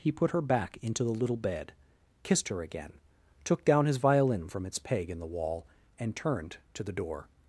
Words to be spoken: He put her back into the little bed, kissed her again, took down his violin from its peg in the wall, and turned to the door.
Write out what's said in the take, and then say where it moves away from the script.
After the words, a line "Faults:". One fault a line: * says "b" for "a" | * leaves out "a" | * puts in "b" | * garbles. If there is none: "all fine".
He put her back into the little bed, kissed her again, took down his violin from its peg in the wall, and turned to the door.
Faults:
all fine